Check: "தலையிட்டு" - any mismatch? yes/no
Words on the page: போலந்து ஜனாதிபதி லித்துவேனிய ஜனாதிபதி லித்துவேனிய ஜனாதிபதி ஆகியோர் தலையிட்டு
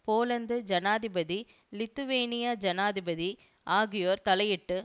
no